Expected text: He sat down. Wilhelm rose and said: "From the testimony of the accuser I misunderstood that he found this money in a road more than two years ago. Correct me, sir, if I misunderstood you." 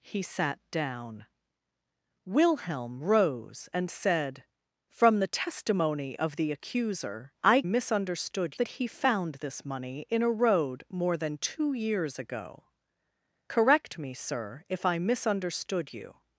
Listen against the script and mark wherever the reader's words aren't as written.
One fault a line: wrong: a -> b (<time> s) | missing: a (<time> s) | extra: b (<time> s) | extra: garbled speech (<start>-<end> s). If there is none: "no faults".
no faults